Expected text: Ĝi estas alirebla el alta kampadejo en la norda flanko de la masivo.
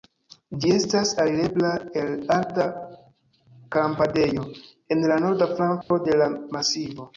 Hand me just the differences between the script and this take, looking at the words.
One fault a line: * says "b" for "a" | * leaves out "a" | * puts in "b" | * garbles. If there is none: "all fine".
all fine